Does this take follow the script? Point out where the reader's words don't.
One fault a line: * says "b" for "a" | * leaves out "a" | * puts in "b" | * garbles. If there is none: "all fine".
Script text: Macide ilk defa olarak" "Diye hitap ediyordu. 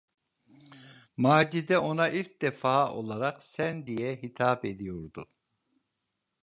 * puts in "ona"
* puts in "Sen"